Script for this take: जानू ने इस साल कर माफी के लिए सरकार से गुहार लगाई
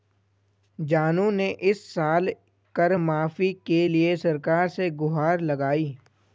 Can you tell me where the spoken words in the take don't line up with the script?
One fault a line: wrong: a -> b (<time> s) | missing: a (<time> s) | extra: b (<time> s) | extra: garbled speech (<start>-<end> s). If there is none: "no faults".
no faults